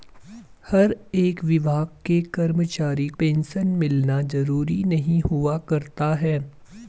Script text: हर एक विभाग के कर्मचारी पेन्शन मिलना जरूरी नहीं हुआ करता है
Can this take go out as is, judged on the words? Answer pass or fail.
pass